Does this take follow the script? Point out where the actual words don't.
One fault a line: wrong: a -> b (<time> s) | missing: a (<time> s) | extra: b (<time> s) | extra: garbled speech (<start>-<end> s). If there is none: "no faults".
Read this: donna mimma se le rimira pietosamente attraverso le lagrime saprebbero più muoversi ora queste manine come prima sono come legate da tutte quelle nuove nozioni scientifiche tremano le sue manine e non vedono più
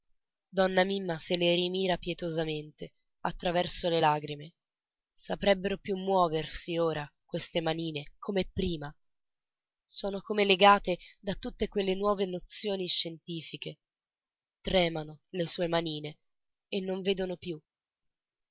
no faults